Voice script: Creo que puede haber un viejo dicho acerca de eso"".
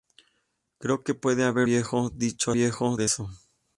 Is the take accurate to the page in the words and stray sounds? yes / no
no